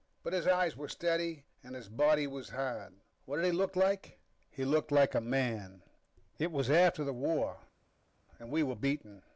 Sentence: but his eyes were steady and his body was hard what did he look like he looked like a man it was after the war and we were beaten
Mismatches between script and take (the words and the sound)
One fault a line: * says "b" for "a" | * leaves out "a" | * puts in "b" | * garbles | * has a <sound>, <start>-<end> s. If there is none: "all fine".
all fine